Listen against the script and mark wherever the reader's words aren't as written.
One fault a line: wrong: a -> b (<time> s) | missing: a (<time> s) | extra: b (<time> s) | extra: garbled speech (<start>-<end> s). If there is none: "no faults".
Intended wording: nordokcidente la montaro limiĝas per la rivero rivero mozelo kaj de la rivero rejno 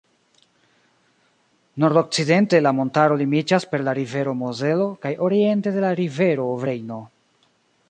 missing: rivero (4.3 s)
extra: oriente (5.3 s)